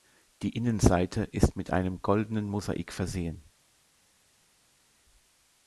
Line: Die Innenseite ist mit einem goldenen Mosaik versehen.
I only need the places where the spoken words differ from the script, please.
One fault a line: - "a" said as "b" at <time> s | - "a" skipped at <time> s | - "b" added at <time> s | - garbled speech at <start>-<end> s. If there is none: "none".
none